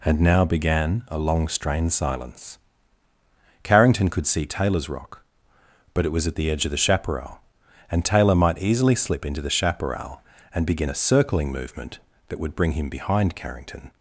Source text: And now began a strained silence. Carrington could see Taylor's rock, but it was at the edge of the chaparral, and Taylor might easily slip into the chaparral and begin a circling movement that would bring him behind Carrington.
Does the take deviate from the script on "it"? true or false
false